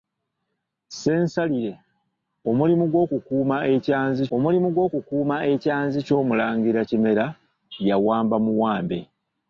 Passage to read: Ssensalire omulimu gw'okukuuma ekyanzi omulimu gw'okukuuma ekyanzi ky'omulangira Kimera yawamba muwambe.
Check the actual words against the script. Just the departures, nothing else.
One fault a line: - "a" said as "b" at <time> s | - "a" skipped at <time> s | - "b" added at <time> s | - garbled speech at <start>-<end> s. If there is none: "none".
none